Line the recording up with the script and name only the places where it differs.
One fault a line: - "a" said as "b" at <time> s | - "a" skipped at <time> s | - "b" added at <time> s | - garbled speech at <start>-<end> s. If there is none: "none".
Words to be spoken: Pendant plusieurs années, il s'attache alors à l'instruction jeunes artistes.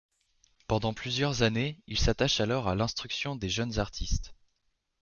- "des" added at 3.4 s